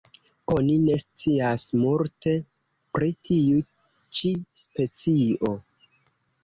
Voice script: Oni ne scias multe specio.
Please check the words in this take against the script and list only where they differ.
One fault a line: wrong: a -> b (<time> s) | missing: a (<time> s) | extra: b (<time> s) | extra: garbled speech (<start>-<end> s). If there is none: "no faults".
extra: pri tiu ĉi (3.0 s)